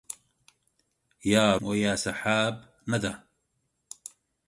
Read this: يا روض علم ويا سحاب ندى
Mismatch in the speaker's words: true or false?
true